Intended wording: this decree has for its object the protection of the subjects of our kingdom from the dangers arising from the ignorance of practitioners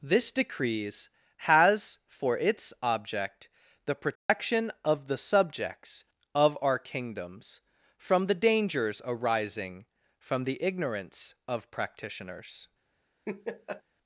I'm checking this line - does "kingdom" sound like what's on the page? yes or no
no